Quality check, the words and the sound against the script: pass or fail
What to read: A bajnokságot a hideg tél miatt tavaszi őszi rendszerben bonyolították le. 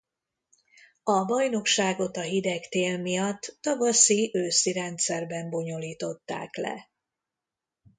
pass